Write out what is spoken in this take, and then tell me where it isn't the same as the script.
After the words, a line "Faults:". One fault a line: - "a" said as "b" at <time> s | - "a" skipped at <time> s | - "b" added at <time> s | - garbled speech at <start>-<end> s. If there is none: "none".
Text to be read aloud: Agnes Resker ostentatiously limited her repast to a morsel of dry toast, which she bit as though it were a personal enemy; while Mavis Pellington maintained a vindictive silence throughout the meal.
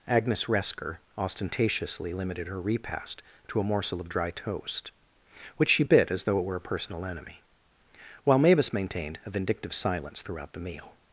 Agnes Resker ostentatiously limited her repast to a morsel of dry toast, which she bit as though it were a personal enemy; while Mavis maintained a vindictive silence throughout the meal.
Faults:
- "Pellington" skipped at 8.7 s